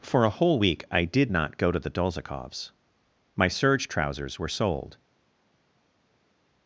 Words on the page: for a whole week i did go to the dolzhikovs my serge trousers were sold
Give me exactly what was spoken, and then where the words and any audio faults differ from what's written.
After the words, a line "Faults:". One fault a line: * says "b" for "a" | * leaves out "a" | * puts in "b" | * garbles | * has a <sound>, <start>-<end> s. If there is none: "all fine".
for a whole week i did not go to the dolzhikovs my serge trousers were sold
Faults:
* puts in "not"